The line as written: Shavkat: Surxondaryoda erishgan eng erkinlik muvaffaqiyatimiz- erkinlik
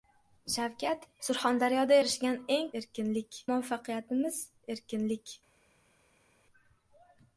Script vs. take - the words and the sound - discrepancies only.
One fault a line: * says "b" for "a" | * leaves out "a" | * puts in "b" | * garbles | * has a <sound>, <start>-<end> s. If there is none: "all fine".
all fine